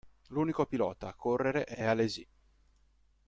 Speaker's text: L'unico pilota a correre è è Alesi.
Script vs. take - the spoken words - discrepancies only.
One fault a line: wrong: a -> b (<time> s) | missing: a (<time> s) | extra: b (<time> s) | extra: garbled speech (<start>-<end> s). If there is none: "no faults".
no faults